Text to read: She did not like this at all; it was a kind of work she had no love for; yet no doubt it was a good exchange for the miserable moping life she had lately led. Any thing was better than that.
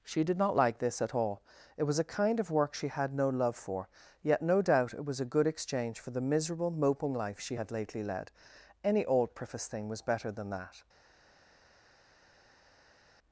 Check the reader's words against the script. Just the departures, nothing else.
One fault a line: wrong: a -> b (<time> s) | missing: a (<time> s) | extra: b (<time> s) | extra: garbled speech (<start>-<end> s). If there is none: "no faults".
extra: old preface (9.0 s)